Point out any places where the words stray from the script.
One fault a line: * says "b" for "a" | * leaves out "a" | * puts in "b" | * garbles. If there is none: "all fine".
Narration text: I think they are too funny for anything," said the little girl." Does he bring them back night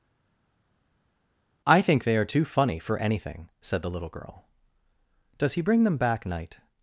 all fine